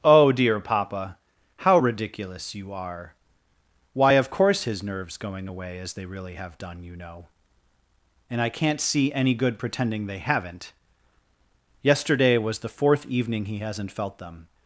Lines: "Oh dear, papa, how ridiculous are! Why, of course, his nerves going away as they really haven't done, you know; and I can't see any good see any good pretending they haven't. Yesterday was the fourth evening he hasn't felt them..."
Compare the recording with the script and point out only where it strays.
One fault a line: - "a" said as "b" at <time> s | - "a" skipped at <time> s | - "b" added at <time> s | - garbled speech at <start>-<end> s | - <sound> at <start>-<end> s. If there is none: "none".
- "you" added at 2.5 s
- "haven't" said as "have" at 6.3 s
- "see any good" skipped at 9.6 s